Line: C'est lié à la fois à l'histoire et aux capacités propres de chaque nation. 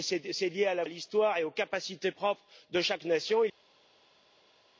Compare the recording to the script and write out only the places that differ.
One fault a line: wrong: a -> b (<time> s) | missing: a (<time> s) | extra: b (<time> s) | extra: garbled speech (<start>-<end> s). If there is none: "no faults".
missing: fois (0.8 s)